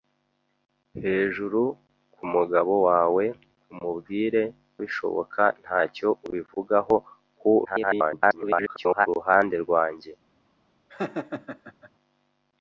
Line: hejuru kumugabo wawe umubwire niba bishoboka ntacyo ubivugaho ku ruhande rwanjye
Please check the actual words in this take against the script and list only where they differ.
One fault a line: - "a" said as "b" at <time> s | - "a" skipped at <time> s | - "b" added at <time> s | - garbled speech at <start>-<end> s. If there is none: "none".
- "niba" skipped at 4.4 s
- garbled speech at 7.6-9.1 s